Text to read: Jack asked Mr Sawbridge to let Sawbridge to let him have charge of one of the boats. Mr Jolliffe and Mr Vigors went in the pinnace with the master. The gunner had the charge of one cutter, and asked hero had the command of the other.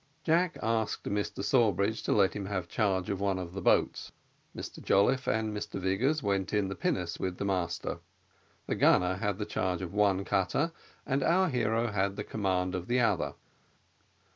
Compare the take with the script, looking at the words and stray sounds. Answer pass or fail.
fail